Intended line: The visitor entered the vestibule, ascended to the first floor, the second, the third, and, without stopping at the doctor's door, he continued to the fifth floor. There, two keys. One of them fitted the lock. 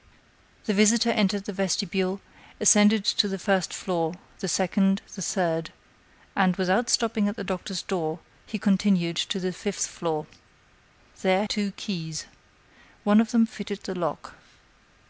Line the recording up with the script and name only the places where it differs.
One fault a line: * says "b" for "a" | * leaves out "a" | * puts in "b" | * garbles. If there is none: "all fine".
all fine